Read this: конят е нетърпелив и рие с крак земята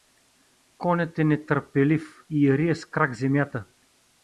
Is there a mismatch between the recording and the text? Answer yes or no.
no